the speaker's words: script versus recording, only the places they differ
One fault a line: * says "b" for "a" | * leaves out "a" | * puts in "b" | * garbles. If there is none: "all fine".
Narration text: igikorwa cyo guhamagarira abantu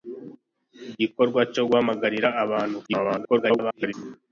* garbles